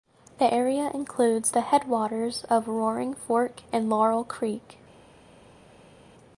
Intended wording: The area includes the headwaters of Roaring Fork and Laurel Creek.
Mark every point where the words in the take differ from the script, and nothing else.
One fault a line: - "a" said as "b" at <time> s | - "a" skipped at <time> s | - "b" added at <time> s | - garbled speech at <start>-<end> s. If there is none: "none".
none